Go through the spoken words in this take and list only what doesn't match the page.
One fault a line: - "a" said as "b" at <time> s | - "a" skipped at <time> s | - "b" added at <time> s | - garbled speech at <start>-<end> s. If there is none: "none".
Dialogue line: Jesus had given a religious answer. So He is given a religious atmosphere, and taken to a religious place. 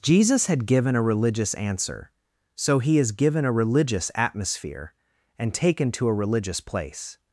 none